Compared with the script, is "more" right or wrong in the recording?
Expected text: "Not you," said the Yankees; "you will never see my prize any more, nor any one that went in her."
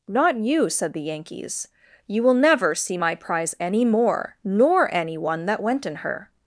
right